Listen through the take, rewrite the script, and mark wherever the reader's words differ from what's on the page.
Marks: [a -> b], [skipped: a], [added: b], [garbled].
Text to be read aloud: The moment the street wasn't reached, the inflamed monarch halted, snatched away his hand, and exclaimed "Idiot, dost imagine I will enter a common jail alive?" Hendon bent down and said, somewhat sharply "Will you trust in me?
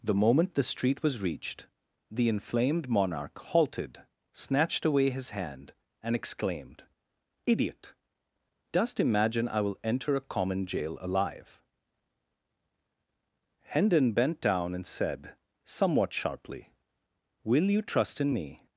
The moment the street [wasn't -> was] reached, the inflamed monarch halted, snatched away his hand, and exclaimed "Idiot, dost imagine I will enter a common jail alive?" Hendon bent down and said, somewhat sharply "Will you trust in me?